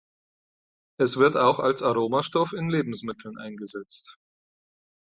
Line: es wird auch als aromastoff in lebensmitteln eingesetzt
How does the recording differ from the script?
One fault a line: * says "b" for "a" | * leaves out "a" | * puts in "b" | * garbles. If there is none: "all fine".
all fine